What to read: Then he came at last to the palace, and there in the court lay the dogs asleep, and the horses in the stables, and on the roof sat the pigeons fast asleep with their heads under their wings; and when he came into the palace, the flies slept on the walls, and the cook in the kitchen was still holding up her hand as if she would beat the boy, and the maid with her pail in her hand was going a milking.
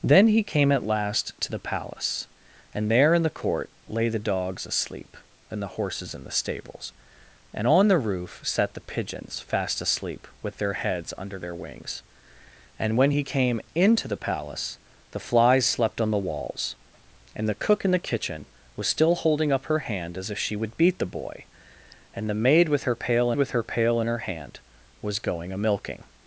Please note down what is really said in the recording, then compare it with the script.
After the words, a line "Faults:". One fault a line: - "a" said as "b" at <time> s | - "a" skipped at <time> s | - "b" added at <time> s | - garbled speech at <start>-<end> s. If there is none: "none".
Then he came at last to the palace, and there in the court lay the dogs asleep, and the horses in the stables, and on the roof sat the pigeons fast asleep with their heads under their wings; and when he came into the palace, the flies slept on the walls, and the cook in the kitchen was still holding up her hand as if she would beat the boy, and the maid with her pail with her pail in her hand was going a milking.
Faults:
- "with her pail" added at 23.4 s